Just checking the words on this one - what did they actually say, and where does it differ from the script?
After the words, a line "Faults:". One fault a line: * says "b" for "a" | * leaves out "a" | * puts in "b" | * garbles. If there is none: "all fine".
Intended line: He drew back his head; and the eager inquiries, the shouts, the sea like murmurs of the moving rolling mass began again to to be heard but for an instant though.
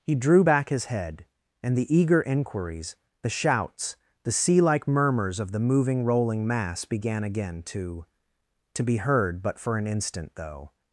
He drew back his head; and the eager inquiries, the shouts, the sea like murmurs of the moving rolling mass began again to to be heard but for an instant though.
Faults:
all fine